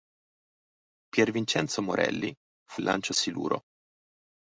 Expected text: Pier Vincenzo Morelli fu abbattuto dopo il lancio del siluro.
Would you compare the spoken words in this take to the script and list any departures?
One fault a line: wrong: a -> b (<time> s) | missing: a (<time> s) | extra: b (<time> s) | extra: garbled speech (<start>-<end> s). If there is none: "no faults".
missing: abbattuto dopo (2.8 s)
missing: del (3.1 s)